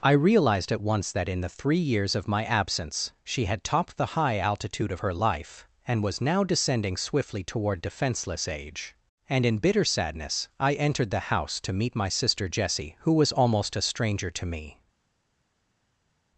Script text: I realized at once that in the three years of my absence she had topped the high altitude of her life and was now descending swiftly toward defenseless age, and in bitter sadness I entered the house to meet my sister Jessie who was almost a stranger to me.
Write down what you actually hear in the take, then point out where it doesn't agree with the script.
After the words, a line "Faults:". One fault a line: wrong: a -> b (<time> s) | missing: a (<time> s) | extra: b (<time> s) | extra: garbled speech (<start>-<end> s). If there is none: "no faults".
I realized at once that in the three years of my absence she had topped the high altitude of her life and was now descending swiftly toward defenseless age, and in bitter sadness I entered the house to meet my sister Jessie who was almost a stranger to me.
Faults:
no faults